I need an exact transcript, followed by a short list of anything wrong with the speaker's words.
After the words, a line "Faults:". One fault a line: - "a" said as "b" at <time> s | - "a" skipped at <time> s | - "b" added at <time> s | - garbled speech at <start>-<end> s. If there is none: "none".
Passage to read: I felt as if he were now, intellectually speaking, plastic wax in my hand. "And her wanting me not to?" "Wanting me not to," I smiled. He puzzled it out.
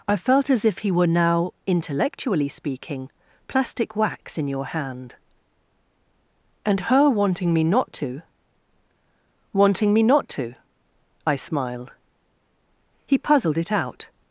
I felt as if he were now, intellectually speaking, plastic wax in your hand. "And her wanting me not to?" "Wanting me not to," I smiled. He puzzled it out.
Faults:
- "my" said as "your" at 4.5 s